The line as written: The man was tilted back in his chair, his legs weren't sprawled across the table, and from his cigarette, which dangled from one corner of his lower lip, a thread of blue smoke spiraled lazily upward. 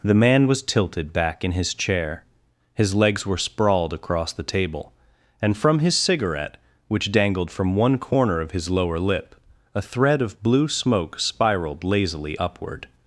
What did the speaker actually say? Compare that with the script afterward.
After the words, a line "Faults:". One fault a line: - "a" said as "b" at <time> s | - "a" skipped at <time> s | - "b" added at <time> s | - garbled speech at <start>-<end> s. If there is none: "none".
The man was tilted back in his chair, his legs were sprawled across the table, and from his cigarette, which dangled from one corner of his lower lip, a thread of blue smoke spiraled lazily upward.
Faults:
- "weren't" said as "were" at 3.2 s